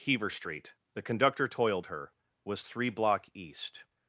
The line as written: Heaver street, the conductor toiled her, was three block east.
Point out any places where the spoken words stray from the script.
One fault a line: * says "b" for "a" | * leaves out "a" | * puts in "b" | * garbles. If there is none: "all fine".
all fine